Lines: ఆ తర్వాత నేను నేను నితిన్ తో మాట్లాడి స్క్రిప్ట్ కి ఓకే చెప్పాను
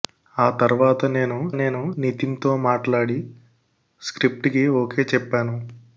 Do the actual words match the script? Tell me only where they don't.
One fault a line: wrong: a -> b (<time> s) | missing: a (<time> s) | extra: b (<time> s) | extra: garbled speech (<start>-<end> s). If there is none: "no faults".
no faults